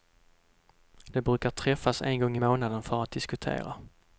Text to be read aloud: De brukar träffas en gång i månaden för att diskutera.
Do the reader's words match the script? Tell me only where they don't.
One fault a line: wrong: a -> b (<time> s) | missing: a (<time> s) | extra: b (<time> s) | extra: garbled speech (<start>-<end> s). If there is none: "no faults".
no faults